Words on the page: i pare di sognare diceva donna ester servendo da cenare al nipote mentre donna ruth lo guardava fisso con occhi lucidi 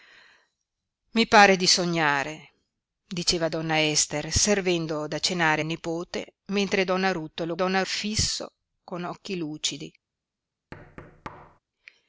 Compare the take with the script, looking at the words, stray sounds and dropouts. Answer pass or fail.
fail